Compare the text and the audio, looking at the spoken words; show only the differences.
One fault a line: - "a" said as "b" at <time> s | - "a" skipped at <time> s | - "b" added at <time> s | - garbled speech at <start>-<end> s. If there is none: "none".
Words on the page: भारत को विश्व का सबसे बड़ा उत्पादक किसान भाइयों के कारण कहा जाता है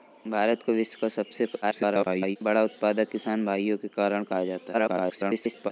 - garbled speech at 1.6-2.4 s
- garbled speech at 4.7-5.7 s